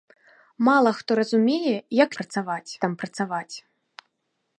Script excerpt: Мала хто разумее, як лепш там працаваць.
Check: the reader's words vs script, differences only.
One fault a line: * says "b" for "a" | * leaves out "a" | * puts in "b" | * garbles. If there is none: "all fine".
* says "працаваць" for "лепш"